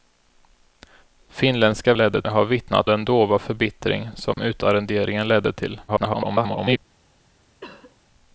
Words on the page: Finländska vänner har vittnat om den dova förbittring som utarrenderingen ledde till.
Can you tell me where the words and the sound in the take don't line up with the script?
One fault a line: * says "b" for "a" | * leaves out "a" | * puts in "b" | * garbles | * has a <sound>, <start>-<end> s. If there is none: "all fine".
* says "ledde" for "vänner"
* leaves out "om"
* has a dropout, 4.3-4.4 s
* garbles
* has a cough, 7.6-8.0 s